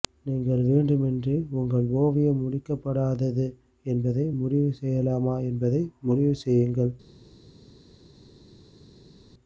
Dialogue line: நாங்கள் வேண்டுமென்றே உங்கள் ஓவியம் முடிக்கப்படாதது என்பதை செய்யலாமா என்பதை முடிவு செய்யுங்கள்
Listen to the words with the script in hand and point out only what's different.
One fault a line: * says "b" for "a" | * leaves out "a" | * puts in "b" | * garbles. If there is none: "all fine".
* says "நீங்கள்" for "நாங்கள்"
* puts in "முடிவு"